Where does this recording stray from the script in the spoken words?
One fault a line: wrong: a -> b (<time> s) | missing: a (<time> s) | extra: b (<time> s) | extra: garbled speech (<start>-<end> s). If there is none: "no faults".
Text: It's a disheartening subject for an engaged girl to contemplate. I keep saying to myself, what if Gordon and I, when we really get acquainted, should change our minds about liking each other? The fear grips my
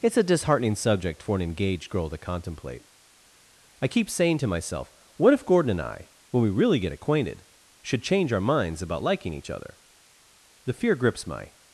no faults